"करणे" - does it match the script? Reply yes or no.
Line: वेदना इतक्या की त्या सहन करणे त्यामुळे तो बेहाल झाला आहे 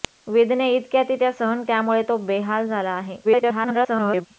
no